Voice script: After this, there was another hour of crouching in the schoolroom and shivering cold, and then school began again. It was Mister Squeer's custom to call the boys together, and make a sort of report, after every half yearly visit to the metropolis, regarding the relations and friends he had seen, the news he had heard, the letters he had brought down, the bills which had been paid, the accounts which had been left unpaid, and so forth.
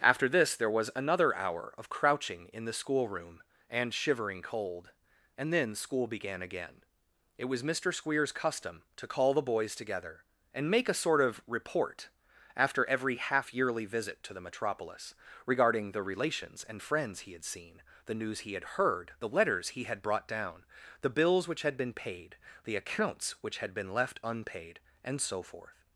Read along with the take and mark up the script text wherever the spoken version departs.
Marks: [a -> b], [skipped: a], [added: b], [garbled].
After this, there was another hour of crouching in the schoolroom and shivering cold, and then school began again. It was Mister Squeer's custom to call the boys together, and make a sort of report, after every half yearly visit to the metropolis, regarding the relations and friends he had seen, the news he had heard, the letters he had brought down, the bills which had been paid, the accounts which had been left unpaid, and so forth.